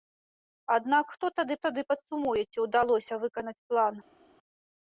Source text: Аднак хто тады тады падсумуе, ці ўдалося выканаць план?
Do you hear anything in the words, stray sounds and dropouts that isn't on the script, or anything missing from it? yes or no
no